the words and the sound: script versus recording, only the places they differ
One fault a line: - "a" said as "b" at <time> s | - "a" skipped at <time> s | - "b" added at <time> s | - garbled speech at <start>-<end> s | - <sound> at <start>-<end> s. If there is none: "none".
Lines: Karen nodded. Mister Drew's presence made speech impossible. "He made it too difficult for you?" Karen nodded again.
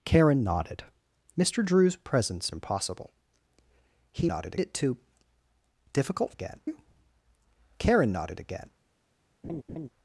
- "made speech" skipped at 2.5 s
- "made" said as "nodded" at 4.3 s
- "for" said as "again" at 6.3 s
- laugh at 9.4-9.9 s